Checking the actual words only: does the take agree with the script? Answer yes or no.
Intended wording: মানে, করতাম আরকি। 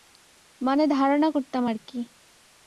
no